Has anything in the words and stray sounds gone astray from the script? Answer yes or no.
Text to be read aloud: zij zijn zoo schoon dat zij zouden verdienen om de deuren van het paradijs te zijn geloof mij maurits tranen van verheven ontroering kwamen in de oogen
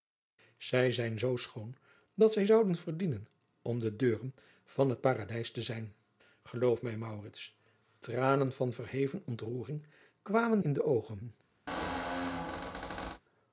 yes